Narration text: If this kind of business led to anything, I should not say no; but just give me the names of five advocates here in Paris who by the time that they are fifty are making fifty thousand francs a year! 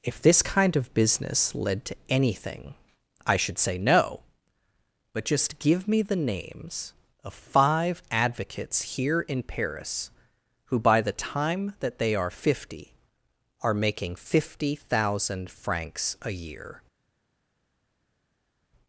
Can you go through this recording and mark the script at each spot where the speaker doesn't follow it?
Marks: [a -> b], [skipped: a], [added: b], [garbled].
If this kind of business led to anything, I should [skipped: not] say no; but just give me the names of five advocates here in Paris who by the time that they are fifty are making fifty thousand francs a year!